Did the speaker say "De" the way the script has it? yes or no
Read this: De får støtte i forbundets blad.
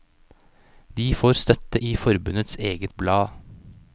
yes